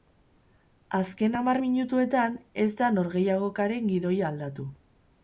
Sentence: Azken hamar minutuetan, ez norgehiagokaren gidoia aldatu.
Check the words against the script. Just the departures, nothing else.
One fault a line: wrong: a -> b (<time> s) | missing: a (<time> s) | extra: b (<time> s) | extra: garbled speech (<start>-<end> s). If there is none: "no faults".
extra: da (2.8 s)